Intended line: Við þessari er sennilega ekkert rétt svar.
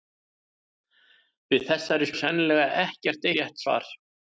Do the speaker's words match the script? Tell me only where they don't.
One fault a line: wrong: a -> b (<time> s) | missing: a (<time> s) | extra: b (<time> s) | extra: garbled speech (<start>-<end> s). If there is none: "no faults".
no faults